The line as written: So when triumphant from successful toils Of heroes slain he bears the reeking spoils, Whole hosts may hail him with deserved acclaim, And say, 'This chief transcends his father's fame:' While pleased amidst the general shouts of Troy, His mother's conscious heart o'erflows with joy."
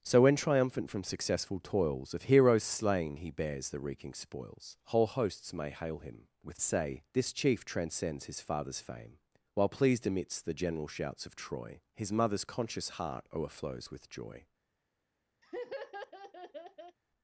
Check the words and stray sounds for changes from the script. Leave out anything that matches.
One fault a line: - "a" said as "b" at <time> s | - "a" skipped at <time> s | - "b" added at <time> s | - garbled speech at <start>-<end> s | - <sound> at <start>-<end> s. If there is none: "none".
- "deserved acclaim And" skipped at 6.6 s
- laugh at 15.4-17.0 s